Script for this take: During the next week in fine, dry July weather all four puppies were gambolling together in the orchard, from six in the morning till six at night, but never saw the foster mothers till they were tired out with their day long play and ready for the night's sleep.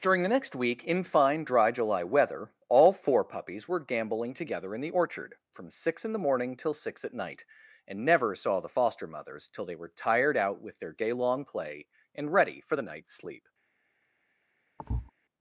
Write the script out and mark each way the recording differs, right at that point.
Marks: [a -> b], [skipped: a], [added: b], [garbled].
During the next week in fine, dry July weather all four puppies were gambolling together in the orchard, from six in the morning till six at night, [but -> and] never saw the foster mothers till they were tired out with their day long play and ready for the night's sleep.